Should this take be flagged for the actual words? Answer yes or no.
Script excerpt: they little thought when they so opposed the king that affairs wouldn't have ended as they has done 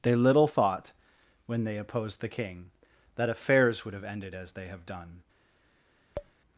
yes